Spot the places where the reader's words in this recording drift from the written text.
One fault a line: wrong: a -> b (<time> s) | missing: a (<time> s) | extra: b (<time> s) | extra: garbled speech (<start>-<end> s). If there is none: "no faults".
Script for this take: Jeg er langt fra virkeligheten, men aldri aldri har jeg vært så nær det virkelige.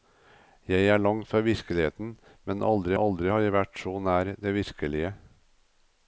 no faults